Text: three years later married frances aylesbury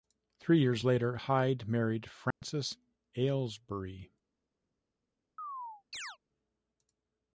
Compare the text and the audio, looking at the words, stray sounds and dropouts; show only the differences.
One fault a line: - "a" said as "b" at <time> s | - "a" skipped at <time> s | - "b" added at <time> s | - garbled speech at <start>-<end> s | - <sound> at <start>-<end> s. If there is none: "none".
- "hyde" added at 1.1 s
- dropout at 2.3-2.4 s
- chirp at 5.4-6.2 s